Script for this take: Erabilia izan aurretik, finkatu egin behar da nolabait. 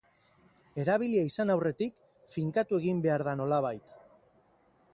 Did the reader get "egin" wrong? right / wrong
right